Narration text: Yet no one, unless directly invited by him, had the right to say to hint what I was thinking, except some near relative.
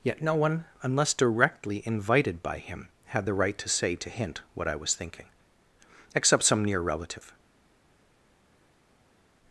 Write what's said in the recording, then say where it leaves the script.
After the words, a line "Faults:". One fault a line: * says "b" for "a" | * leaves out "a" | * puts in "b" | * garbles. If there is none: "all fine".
Yet no one, unless directly invited by him, had the right to say to hint what I was thinking, except some near relative.
Faults:
all fine